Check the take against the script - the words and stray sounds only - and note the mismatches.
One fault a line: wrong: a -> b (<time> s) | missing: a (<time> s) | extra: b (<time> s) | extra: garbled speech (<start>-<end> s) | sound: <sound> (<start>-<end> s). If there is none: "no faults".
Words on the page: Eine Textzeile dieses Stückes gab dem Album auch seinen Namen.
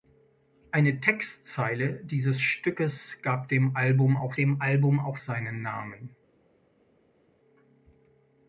extra: dem Album auch (4.4 s)